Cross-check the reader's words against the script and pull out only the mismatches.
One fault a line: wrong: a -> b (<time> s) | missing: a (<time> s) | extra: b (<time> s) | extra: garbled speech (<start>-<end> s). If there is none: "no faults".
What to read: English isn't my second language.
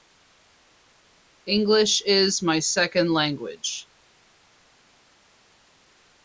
wrong: isn't -> is (2.0 s)